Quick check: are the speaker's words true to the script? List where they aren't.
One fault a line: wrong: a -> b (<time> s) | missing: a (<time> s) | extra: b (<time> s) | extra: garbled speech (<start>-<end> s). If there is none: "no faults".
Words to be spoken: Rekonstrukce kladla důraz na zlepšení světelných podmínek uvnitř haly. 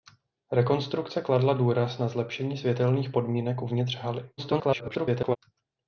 extra: garbled speech (4.4-5.4 s)